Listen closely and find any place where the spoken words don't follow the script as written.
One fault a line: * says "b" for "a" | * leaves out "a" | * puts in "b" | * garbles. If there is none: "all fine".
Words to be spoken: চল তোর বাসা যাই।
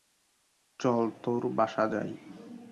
all fine